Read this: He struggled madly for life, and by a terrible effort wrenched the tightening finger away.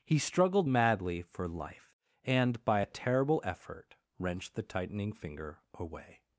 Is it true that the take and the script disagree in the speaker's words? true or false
false